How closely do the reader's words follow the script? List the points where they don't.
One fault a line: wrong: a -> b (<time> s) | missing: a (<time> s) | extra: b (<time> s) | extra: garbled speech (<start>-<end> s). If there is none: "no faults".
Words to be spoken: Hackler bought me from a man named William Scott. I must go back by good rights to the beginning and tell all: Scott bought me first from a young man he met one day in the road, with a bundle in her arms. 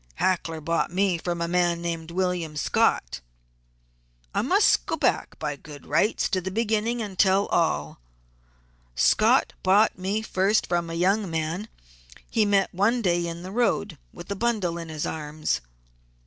wrong: her -> his (14.9 s)